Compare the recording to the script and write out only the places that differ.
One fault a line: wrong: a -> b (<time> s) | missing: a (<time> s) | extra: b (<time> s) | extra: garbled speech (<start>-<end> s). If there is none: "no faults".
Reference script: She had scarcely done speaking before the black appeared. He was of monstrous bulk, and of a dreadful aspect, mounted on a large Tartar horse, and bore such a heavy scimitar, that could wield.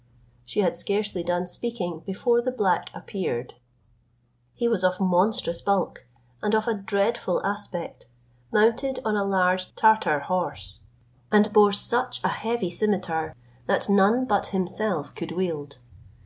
extra: none but himself (13.9 s)